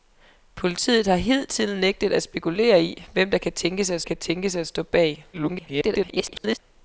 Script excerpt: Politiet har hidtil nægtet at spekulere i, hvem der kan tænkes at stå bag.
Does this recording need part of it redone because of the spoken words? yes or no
yes